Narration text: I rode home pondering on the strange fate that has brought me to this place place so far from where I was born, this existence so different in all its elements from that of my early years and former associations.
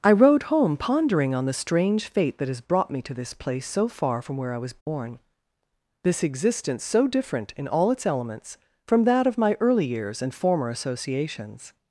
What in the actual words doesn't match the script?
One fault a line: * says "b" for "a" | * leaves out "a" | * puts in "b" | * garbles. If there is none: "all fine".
* leaves out "place"